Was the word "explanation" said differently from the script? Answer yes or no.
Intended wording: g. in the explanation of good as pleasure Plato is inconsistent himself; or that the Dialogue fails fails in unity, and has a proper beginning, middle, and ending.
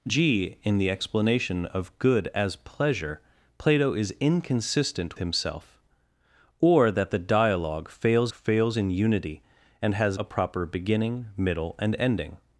no